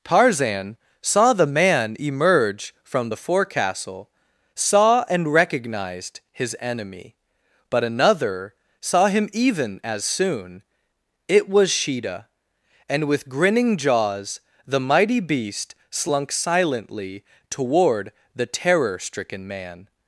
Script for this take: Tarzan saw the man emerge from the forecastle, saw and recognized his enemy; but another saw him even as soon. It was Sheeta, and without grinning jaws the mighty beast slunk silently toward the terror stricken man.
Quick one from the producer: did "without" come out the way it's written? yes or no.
no